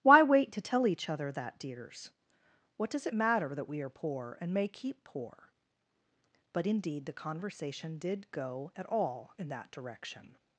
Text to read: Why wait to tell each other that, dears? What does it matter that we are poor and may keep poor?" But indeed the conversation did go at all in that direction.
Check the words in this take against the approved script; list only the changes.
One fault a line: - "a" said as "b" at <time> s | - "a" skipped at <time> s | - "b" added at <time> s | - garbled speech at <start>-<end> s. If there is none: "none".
none